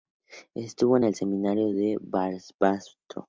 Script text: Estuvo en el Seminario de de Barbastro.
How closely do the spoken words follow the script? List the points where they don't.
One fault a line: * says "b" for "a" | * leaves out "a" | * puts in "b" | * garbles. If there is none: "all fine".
* leaves out "de"